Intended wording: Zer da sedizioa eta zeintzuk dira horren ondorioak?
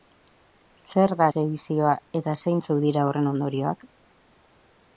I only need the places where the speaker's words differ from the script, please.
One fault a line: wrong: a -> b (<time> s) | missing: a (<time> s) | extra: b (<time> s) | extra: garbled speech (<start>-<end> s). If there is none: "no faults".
no faults